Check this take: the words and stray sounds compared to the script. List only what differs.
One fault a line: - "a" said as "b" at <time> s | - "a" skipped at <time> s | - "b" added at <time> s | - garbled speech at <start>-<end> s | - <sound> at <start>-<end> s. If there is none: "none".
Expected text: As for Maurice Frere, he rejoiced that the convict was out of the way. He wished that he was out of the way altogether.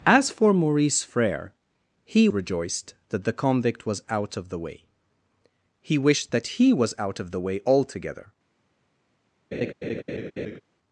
- laugh at 9.5-10.6 s